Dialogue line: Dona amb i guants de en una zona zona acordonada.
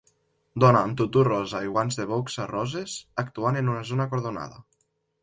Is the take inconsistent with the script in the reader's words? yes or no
yes